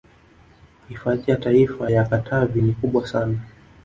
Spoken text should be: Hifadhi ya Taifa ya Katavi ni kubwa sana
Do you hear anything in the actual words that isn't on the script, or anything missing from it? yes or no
no